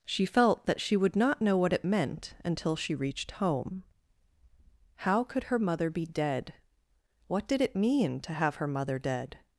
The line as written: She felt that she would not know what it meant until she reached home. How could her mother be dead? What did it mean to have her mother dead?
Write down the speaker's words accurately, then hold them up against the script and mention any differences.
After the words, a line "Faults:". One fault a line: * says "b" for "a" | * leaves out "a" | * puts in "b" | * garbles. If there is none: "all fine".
She felt that she would not know what it meant until she reached home. How could her mother be dead? What did it mean to have her mother dead?
Faults:
all fine